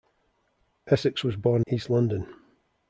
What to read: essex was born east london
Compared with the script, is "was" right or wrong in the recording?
right